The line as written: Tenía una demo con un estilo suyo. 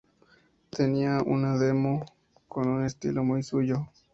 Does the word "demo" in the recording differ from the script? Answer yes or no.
no